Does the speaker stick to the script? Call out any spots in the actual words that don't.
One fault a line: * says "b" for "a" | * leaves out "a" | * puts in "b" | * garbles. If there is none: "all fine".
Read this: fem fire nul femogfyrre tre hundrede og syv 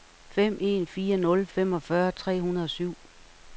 * puts in "en"